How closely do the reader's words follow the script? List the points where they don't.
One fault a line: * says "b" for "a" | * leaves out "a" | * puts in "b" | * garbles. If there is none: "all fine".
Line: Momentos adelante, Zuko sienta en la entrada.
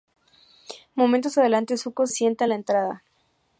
all fine